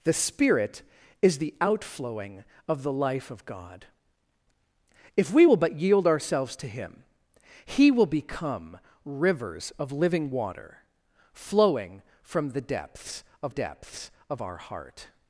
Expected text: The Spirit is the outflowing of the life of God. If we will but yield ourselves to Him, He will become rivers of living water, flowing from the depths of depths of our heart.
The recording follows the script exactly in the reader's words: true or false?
true